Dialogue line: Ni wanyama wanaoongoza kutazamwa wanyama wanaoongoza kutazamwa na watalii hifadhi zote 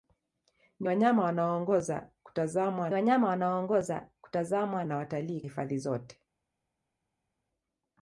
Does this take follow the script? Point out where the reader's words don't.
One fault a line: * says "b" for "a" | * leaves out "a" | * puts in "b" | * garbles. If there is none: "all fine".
all fine